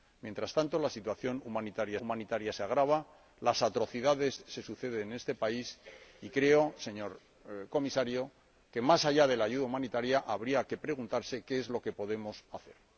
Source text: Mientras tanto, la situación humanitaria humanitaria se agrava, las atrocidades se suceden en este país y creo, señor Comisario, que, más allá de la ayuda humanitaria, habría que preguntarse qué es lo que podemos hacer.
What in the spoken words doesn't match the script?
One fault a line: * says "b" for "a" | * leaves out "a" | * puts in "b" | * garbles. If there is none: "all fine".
all fine